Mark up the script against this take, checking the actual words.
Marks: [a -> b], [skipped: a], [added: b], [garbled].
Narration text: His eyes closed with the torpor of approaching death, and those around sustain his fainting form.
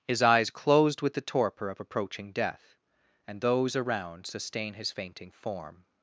His eyes closed with the torpor of approaching death, and those around sustain his fainting form.